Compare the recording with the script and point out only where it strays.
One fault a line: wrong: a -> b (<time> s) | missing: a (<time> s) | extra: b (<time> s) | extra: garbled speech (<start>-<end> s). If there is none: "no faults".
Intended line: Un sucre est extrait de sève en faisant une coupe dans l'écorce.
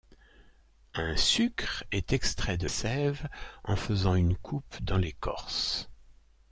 no faults